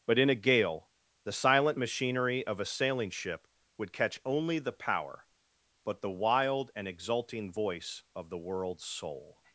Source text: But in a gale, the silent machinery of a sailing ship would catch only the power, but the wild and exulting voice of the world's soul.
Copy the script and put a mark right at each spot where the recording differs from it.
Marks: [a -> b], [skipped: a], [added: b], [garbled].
But in a gale, the silent machinery of a sailing ship would catch only the power, but the wild and exulting voice of the world's soul.